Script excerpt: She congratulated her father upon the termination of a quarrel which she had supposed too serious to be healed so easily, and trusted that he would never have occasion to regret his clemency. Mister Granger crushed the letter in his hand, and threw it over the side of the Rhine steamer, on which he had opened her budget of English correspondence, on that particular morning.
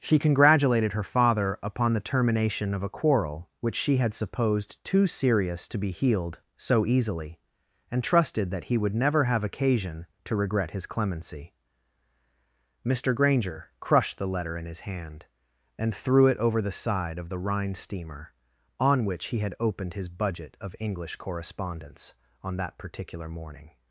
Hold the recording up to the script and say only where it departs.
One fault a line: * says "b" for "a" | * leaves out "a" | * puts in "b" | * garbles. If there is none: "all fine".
* says "his" for "her"